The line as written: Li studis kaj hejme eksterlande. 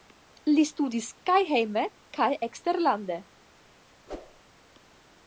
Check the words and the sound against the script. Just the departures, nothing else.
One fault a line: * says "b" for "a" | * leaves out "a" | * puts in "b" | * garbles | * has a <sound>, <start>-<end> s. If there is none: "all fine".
* puts in "kaj"
* has a whoosh, 4.1-4.4 s